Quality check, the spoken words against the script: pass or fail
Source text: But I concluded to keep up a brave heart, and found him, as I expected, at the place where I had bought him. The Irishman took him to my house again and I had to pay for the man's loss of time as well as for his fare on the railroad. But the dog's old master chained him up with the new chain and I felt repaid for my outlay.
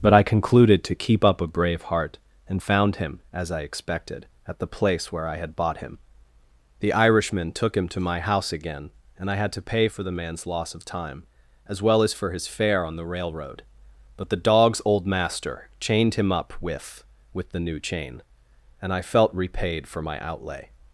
fail